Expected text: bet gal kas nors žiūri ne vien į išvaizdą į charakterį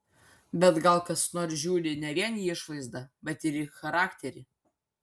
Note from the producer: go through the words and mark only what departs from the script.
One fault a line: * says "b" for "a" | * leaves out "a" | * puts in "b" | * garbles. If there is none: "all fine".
* puts in "bet ir"